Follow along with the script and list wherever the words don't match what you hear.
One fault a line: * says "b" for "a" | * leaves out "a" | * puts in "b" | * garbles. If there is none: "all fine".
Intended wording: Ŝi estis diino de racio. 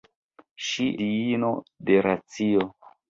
* leaves out "estis"